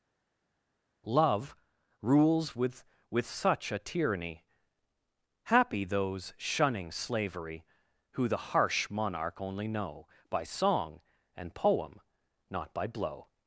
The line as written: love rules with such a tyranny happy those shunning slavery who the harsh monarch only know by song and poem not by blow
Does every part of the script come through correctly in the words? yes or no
no